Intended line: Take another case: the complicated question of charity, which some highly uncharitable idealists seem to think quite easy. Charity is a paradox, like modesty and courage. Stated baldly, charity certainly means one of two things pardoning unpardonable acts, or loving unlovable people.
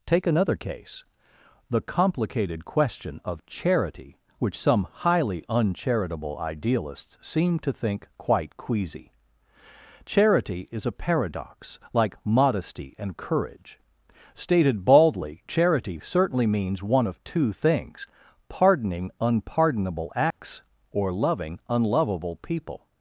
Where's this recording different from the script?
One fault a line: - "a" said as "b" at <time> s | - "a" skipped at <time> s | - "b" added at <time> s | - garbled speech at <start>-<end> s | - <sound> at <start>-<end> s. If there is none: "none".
- "easy" said as "queasy" at 8.6 s
- dropout at 20.3-20.4 s